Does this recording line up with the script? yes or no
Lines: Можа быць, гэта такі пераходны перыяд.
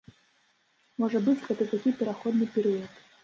yes